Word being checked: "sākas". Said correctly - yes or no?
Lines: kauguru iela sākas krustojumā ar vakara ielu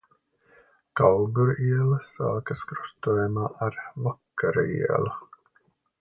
yes